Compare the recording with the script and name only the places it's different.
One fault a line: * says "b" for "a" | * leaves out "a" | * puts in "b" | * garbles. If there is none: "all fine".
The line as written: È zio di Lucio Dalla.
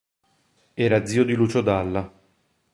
* says "Era" for "È"